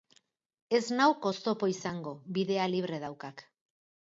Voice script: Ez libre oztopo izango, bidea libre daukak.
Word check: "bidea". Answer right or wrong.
right